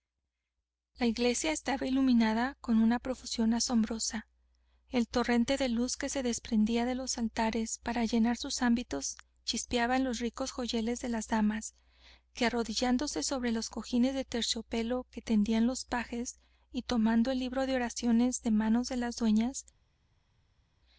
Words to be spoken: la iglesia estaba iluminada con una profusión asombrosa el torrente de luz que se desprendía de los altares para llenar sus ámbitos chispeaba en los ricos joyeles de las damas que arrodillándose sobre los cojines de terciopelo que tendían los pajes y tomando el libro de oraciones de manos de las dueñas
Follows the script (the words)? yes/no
yes